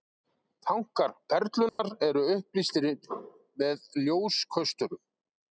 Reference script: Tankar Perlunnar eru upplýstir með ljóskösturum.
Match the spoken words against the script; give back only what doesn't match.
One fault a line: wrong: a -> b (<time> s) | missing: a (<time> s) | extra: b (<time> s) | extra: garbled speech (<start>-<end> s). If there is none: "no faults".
no faults